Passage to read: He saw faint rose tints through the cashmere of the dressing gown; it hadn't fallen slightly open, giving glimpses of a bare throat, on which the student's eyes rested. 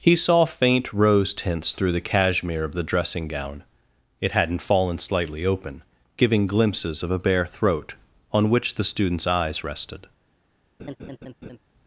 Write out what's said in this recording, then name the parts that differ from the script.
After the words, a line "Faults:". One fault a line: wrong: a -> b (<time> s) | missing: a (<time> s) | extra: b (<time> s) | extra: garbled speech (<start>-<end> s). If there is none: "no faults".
He saw faint rose tints through the cashmere of the dressing gown; it hadn't fallen slightly open, giving glimpses of a bare throat, on which the student's eyes rested.
Faults:
no faults